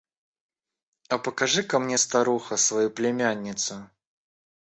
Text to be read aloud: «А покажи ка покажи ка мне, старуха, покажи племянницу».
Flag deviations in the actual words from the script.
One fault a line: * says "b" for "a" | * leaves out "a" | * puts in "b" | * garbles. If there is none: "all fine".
* leaves out "покажи ка"
* says "свою" for "покажи"